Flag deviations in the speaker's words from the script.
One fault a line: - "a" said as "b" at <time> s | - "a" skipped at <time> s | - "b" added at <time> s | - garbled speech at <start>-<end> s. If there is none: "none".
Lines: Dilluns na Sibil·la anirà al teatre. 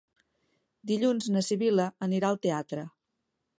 none